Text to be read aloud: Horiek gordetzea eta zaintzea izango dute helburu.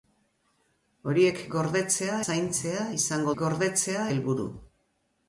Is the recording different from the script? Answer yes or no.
yes